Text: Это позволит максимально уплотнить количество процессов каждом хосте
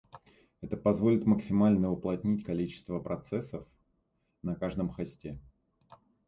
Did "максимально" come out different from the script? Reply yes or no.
no